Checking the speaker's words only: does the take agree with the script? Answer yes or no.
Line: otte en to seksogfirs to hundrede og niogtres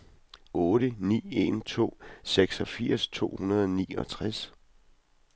no